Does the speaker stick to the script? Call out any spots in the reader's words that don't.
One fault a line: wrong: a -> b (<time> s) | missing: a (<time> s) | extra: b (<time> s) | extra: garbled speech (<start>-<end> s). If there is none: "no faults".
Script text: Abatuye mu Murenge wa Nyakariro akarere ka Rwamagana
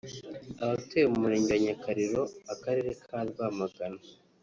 no faults